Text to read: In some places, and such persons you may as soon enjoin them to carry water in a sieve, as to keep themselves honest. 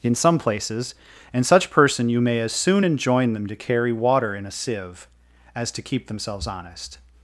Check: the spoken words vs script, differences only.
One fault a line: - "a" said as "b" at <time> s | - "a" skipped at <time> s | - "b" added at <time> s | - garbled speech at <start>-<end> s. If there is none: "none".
- "persons" said as "person" at 1.7 s